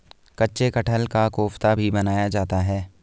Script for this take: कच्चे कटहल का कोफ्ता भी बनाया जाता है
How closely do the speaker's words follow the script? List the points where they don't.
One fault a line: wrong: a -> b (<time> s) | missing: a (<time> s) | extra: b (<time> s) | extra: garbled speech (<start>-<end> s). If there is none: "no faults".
no faults